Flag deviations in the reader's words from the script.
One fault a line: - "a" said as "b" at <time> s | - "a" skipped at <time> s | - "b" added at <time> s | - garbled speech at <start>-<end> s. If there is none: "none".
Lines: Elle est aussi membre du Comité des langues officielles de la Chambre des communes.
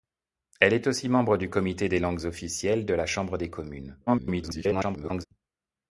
- garbled speech at 4.1-5.3 s